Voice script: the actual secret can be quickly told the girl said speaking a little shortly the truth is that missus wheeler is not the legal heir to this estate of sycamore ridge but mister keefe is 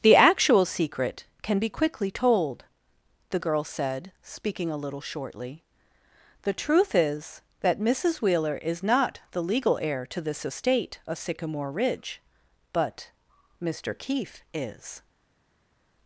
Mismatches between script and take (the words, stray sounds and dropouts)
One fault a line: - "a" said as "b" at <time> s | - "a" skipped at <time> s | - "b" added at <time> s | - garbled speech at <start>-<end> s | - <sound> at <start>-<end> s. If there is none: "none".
none